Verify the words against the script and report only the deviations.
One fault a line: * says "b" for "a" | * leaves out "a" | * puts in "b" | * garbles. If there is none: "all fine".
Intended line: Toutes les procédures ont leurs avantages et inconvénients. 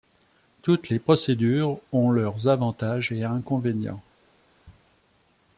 all fine